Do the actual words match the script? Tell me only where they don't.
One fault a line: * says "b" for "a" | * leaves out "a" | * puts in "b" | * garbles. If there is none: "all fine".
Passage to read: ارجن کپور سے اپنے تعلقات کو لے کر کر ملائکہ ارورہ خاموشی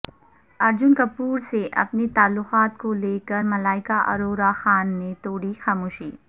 * leaves out "کر"
* puts in "خان نے توڑی"